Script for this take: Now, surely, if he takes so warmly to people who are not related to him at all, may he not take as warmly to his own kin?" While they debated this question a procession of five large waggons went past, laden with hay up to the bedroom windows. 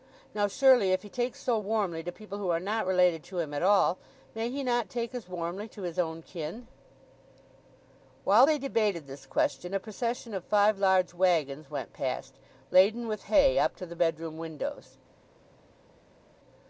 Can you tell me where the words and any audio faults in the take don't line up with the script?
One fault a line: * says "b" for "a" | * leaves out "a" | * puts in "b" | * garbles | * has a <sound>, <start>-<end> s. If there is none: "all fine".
all fine